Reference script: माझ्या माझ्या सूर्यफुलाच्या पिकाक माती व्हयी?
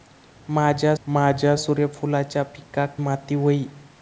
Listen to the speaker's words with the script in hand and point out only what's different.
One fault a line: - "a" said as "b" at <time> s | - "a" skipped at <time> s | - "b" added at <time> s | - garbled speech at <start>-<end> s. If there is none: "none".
none